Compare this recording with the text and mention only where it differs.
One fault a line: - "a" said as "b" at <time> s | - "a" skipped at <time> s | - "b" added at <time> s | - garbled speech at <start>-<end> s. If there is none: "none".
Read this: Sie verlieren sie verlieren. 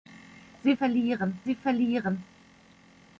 none